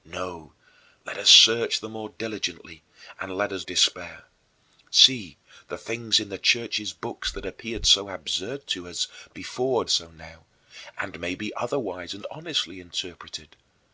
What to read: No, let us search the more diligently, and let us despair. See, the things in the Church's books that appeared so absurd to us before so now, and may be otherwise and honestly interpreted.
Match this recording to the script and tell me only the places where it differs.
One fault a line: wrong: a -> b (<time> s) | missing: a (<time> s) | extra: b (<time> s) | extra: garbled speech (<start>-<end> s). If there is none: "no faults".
no faults